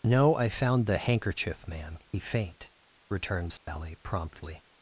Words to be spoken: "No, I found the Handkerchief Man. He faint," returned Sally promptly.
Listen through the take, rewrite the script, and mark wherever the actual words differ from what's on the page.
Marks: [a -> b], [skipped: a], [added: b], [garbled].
"No, I found the Handkerchief Man. He faint," returned Sally promptly.